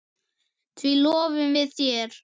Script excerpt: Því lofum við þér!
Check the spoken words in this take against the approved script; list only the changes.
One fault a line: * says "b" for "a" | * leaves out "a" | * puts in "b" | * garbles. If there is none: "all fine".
all fine